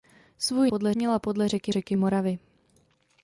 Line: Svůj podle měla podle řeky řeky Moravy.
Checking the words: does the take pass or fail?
pass